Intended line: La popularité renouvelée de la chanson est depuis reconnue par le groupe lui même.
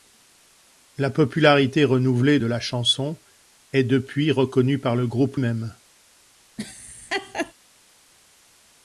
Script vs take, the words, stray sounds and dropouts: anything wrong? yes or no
yes